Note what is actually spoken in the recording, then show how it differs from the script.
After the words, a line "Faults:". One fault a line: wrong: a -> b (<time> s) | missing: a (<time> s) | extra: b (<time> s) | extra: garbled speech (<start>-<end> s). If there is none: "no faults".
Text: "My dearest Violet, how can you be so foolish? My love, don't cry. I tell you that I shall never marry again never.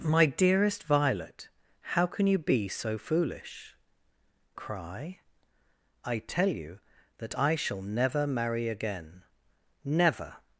"My dearest Violet, how can you be so foolish? Cry. I tell you that I shall never marry again never.
Faults:
missing: My love don't (3.8 s)